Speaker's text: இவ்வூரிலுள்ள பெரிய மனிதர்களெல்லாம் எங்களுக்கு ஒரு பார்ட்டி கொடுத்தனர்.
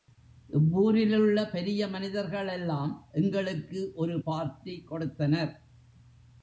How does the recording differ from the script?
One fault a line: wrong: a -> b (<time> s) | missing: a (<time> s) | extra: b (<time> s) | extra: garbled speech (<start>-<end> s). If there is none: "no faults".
no faults